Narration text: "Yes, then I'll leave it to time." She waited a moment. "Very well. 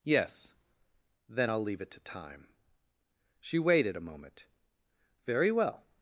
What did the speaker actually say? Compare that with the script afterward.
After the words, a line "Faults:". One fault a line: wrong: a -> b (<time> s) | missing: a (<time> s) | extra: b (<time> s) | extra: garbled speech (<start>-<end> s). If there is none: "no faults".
"Yes, then I'll leave it to time." She waited a moment. "Very well.
Faults:
no faults